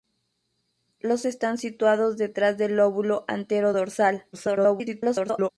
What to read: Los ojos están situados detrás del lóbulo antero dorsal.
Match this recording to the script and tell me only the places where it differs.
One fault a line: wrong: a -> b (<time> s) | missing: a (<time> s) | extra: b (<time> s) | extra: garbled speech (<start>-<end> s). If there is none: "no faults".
missing: ojos (1.3 s)
extra: garbled speech (4.3-5.5 s)